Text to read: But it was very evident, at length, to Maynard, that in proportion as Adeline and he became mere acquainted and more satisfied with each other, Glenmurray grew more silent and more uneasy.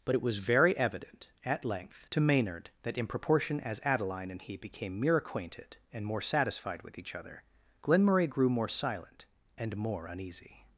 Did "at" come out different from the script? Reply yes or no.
no